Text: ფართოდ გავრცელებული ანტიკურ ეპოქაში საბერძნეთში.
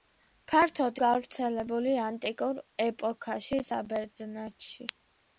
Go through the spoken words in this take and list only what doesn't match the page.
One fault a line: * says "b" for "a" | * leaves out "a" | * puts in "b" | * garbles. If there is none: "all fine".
all fine